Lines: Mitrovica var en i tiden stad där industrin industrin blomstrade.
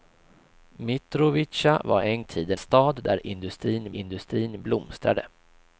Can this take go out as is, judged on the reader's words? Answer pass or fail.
pass